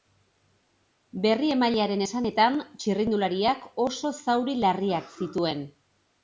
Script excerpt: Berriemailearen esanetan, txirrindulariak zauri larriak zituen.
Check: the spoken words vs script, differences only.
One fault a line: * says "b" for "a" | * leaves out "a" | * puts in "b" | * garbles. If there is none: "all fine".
* puts in "oso"